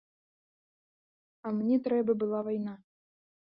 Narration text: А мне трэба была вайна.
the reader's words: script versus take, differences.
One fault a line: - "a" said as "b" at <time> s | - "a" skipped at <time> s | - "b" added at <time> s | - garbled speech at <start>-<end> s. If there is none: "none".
none